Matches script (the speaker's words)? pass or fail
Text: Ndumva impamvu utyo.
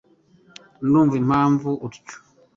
pass